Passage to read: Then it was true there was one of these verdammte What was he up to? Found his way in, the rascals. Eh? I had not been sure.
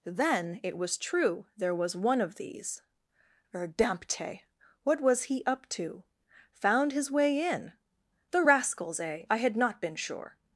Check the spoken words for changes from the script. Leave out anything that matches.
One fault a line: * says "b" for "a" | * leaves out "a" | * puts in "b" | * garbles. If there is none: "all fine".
all fine